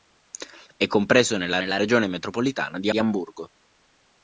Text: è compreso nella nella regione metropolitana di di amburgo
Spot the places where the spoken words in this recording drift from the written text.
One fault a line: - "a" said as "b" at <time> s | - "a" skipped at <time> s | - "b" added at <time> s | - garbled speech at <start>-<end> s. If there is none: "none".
none